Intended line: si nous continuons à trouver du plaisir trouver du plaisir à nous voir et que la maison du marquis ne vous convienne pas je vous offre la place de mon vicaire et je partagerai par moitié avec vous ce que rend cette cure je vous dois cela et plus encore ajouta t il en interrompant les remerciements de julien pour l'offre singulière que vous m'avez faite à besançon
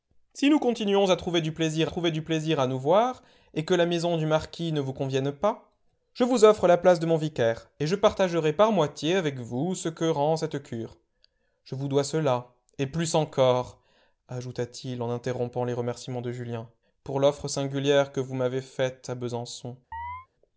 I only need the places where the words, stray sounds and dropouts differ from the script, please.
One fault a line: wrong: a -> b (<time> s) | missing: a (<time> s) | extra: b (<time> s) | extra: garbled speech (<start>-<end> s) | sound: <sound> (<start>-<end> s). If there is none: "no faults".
sound: chirp (19.9-20.3 s)